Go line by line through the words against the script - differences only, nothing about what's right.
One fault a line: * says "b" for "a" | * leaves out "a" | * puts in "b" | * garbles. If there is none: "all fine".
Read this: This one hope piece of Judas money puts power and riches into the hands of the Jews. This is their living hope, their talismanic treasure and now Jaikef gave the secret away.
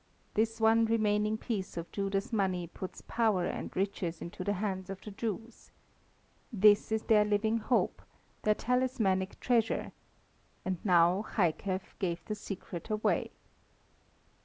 * says "remaining" for "hope"